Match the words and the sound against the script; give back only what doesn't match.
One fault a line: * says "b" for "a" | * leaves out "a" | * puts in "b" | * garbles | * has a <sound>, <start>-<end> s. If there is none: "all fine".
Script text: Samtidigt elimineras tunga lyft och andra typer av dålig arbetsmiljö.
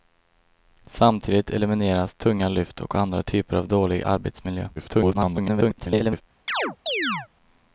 * garbles
* has a chirp, 6.5-7.3 s